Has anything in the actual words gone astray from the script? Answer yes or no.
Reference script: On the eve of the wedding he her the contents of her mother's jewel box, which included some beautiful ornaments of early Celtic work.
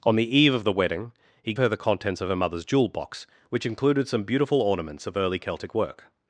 no